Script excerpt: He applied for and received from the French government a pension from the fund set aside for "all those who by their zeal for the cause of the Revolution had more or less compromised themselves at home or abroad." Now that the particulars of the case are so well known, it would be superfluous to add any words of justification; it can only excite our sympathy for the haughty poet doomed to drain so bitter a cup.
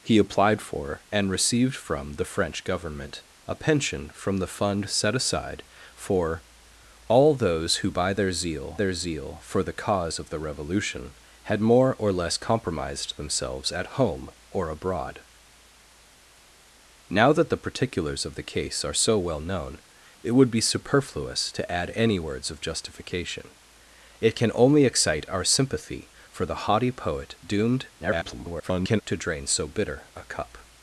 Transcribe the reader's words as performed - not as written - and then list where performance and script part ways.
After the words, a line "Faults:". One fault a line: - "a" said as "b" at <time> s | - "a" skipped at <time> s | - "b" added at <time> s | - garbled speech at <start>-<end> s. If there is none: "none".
He applied for and received from the French government a pension from the fund set aside for "all those who by their zeal their zeal for the cause of the Revolution had more or less compromised themselves at home or abroad." Now that the particulars of the case are so well known, it would be superfluous to add any words of justification; it can only excite our sympathy for the haughty poet doomed [garbled] to drain so bitter a cup.
Faults:
- "their zeal" added at 8.7 s
- garbled speech at 28.0-29.0 s